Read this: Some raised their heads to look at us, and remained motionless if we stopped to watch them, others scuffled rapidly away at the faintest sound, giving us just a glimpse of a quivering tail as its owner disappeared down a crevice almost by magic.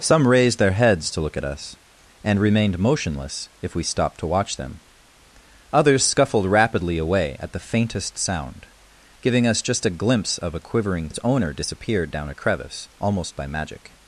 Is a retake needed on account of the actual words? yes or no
yes